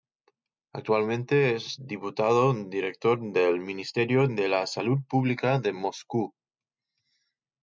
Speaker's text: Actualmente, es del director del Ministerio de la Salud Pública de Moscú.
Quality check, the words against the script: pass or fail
fail